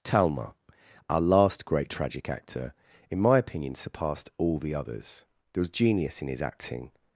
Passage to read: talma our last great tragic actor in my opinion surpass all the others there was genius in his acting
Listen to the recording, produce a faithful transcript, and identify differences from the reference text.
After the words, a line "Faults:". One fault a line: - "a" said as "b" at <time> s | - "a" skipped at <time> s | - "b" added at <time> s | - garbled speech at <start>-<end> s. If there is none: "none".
talma our last great tragic actor in my opinion surpassed all the others there was genius in his acting
Faults:
- "surpass" said as "surpassed" at 3.8 s